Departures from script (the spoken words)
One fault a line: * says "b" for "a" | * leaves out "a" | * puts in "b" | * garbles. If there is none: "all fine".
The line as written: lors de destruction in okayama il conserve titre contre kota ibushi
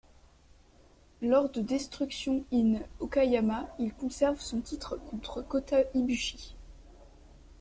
* puts in "son"